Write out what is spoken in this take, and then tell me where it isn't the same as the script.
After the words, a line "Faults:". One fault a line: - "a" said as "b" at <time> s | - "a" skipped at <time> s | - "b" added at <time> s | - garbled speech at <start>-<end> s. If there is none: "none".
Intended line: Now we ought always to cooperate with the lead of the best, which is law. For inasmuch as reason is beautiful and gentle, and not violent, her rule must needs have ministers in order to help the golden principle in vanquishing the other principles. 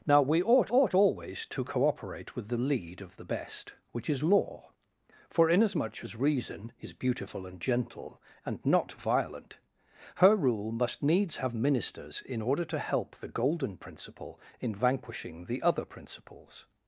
Now we ought ought always to cooperate with the lead of the best, which is law. For inasmuch as reason is beautiful and gentle, and not violent, her rule must needs have ministers in order to help the golden principle in vanquishing the other principles.
Faults:
- "ought" added at 0.7 s